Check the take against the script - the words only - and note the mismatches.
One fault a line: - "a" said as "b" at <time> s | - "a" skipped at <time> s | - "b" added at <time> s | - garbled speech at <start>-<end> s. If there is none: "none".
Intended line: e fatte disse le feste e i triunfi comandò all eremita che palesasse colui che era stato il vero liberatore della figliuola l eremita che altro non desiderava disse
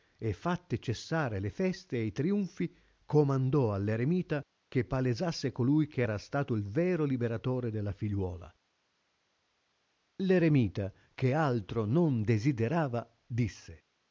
- "disse" said as "cessare" at 0.8 s